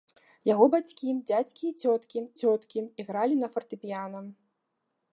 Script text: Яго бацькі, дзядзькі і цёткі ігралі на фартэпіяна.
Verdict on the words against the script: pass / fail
fail